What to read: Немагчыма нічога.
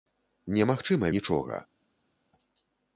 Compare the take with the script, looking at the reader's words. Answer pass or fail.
pass